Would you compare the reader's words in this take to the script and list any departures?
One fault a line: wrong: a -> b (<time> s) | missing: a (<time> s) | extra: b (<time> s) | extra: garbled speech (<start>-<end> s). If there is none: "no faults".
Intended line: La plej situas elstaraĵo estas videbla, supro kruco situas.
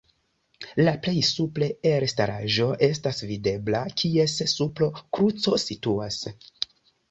wrong: situas -> supre (1.3 s)
extra: kies (4.1 s)